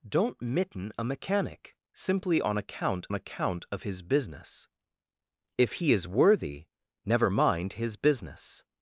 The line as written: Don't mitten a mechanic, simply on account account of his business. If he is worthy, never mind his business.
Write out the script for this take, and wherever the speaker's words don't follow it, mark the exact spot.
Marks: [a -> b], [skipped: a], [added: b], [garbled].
Don't mitten a mechanic, simply on account account of his business. If he is worthy, never mind his business.